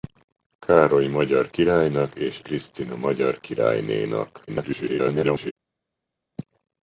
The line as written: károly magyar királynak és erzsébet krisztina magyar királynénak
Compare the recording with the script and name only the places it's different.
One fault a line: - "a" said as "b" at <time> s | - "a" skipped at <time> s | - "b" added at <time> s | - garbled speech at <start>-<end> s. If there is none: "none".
- "erzsébet" skipped at 2.4 s
- garbled speech at 4.5-5.5 s